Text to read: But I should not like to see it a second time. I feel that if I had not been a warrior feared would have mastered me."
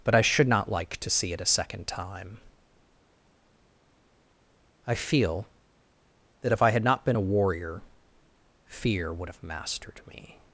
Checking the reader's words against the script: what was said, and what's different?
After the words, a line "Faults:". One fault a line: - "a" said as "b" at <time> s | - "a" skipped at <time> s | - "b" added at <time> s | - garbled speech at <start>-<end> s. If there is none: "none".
But I should not like to see it a second time. I feel that if I had not been a warrior fear would have mastered me."
Faults:
- "feared" said as "fear" at 8.7 s